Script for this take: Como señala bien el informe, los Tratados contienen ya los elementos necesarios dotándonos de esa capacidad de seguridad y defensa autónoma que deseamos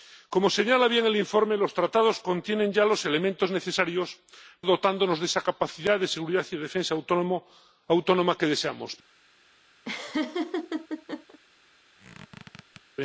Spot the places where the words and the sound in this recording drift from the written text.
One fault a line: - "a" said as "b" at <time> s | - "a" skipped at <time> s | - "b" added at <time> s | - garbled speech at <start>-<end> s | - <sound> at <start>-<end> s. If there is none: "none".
- laugh at 9.8-11.4 s
- squeak at 12.0-12.8 s